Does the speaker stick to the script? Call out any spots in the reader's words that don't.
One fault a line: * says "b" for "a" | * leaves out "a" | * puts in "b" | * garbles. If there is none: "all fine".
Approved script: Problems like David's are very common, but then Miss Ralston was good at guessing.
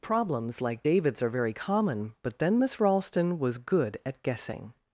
all fine